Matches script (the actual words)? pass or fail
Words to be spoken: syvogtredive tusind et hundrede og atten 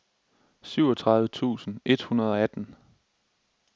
pass